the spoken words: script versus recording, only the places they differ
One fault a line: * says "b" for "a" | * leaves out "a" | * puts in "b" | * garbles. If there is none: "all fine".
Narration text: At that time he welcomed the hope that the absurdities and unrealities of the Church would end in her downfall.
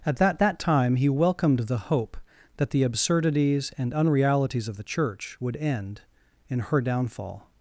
* puts in "that"